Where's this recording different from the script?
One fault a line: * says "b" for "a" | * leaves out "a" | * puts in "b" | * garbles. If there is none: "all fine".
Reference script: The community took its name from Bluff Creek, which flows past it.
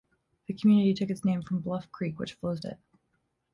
* leaves out "past"